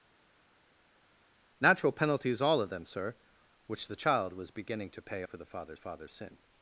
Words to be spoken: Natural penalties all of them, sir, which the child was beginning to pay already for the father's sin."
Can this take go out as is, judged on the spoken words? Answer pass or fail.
fail